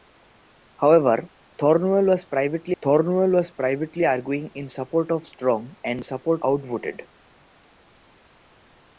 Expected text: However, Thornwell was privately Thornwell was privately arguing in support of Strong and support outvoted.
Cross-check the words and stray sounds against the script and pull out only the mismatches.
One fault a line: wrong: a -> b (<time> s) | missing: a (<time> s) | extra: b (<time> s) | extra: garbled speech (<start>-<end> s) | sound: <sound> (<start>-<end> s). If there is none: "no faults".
no faults